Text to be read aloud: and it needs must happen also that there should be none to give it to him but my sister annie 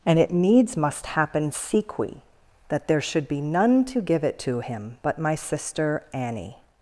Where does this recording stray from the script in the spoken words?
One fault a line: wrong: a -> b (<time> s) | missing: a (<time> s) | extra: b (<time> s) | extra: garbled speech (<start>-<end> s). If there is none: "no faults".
wrong: also -> sequi (1.5 s)